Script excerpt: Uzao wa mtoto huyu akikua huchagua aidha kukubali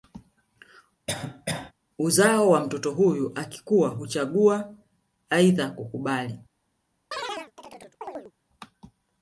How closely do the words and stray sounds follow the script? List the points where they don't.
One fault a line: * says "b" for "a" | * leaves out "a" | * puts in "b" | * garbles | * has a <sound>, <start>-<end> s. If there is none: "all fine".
* has a cough, 1.1-1.7 s
* has a chirp, 7.1-8.3 s